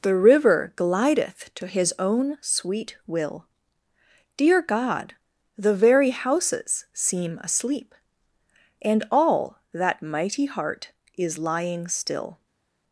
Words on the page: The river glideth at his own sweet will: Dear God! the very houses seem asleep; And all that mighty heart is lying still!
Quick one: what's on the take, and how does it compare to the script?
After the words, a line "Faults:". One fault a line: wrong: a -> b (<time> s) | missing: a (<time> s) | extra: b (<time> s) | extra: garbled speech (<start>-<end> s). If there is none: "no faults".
The river glideth to his own sweet will: Dear God! the very houses seem asleep; And all that mighty heart is lying still!
Faults:
wrong: at -> to (1.6 s)